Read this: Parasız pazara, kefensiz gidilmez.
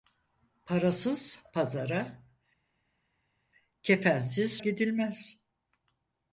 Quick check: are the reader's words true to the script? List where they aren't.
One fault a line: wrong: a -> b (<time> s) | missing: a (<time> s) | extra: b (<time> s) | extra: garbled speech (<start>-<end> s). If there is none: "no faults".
no faults